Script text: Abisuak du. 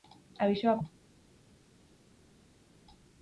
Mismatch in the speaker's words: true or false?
false